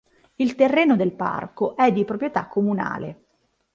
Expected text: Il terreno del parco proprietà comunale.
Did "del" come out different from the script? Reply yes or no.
no